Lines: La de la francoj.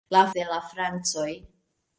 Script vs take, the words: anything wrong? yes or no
no